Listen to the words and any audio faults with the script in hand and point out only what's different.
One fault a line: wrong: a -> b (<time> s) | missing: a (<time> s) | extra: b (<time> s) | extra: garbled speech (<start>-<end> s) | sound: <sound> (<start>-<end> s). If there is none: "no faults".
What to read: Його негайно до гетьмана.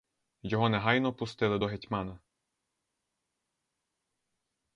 extra: пустили (1.1 s)